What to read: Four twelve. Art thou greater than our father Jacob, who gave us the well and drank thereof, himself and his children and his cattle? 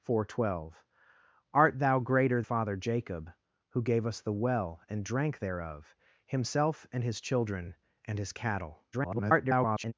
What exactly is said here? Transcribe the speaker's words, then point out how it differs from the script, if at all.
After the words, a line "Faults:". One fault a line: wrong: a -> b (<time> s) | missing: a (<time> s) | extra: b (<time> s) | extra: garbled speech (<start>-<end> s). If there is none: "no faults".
Four twelve. Art thou greater father Jacob, who gave us the well and drank thereof, himself and his children and his cattle? [garbled]
Faults:
missing: than our (2.4 s)
extra: garbled speech (8.9-9.9 s)